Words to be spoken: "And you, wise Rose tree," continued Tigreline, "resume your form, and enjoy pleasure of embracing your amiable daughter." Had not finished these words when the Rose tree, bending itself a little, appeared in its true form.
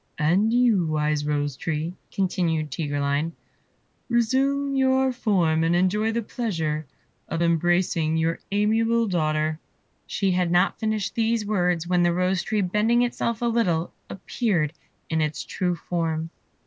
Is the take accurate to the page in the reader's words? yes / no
no